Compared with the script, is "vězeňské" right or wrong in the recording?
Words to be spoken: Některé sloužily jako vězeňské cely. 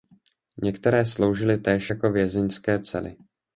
right